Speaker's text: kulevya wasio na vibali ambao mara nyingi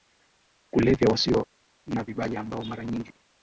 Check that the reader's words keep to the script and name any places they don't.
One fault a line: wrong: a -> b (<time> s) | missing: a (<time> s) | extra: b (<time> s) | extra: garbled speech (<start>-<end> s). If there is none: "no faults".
no faults